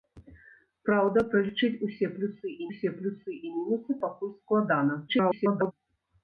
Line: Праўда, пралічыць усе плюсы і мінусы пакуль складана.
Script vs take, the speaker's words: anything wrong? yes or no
yes